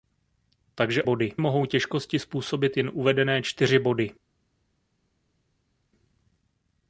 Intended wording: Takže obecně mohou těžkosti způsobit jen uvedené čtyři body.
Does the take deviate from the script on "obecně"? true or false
true